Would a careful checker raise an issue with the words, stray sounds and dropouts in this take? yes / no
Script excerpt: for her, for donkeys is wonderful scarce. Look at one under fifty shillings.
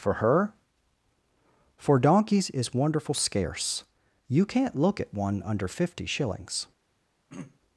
yes